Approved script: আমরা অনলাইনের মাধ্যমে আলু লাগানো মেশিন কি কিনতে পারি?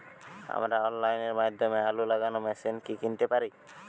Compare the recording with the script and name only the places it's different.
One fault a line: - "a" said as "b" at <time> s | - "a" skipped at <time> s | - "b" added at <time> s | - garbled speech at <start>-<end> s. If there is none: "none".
none